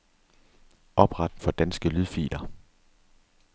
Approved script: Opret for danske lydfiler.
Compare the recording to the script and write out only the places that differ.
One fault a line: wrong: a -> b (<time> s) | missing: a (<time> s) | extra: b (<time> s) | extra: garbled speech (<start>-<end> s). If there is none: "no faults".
no faults